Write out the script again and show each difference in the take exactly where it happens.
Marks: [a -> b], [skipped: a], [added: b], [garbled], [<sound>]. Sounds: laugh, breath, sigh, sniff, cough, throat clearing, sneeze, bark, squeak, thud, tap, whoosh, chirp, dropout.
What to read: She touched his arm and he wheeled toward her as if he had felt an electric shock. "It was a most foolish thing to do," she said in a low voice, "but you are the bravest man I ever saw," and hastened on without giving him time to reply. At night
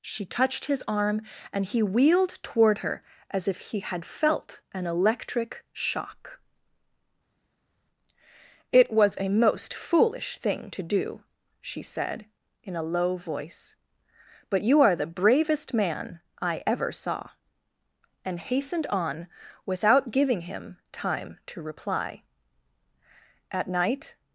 She touched his arm and he wheeled toward her as if he had felt an electric shock. "It was a most foolish thing to do," she said in a low voice, "but you are the bravest man I ever saw," and hastened on without giving him time to reply. At night